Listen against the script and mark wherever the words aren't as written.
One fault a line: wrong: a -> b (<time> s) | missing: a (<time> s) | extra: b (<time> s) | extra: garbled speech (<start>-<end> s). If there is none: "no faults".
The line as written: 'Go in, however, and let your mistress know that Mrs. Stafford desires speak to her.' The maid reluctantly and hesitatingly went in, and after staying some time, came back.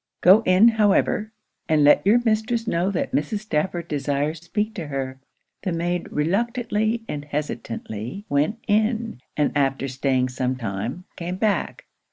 no faults